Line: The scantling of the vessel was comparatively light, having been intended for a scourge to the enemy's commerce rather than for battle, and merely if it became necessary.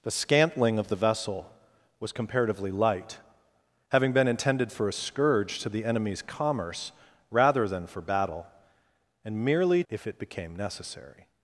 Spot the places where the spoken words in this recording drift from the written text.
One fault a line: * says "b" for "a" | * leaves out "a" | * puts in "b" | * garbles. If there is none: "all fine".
all fine